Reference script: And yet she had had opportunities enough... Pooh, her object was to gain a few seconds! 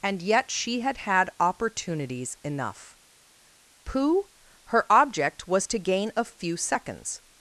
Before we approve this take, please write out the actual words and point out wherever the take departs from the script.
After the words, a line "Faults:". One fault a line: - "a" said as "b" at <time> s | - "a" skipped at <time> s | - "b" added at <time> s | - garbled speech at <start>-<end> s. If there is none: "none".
And yet she had had opportunities enough... Pooh, her object was to gain a few seconds!
Faults:
none